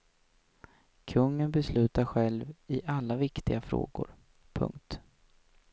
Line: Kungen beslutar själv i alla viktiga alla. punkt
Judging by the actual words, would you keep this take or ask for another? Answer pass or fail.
fail